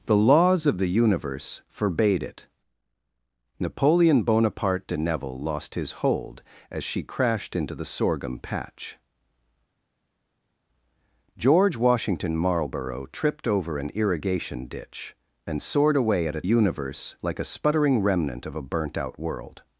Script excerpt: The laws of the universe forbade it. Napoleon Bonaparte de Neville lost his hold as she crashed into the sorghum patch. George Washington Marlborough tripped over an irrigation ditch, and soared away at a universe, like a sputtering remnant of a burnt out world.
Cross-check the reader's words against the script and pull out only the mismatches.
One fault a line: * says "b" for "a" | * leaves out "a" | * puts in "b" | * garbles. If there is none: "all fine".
all fine